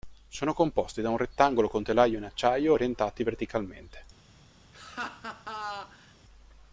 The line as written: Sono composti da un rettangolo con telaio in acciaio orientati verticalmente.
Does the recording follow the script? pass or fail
pass